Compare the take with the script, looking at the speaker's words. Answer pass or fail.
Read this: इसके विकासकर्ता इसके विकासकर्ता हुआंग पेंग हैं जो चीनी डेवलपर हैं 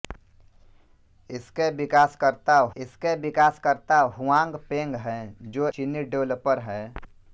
pass